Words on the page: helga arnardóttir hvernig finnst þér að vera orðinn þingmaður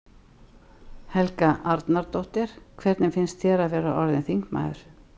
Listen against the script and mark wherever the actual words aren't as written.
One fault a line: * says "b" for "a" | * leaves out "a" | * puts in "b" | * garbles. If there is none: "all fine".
all fine